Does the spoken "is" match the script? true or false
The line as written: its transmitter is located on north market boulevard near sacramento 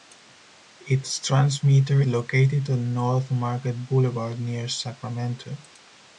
false